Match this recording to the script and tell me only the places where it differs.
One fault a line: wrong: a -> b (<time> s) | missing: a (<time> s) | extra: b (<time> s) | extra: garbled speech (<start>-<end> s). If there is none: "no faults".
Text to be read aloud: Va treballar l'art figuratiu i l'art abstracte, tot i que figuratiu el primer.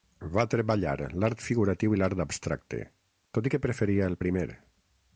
wrong: figuratiu -> preferia (3.7 s)